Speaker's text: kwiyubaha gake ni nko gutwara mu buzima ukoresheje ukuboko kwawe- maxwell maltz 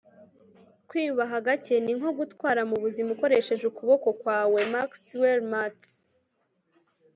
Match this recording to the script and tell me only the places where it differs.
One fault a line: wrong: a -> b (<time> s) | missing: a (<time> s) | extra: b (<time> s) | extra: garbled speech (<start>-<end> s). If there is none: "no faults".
no faults